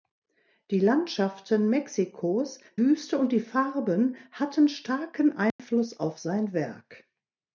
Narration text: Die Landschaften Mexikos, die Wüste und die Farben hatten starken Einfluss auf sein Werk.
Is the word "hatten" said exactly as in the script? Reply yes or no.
yes